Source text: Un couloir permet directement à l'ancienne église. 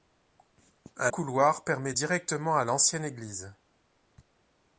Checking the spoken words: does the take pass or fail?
pass